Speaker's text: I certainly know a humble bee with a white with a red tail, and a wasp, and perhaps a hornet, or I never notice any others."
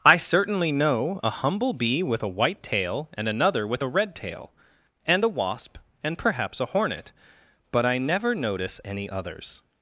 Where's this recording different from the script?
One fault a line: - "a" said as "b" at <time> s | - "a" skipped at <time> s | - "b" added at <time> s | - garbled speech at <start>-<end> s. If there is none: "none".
- "tail and another" added at 2.6 s
- "or" said as "but" at 7.7 s